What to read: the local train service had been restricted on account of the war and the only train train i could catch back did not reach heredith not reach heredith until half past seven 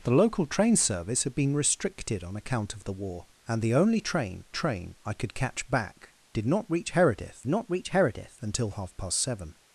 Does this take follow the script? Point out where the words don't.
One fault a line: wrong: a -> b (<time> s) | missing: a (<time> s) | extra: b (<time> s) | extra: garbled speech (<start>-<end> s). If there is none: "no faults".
no faults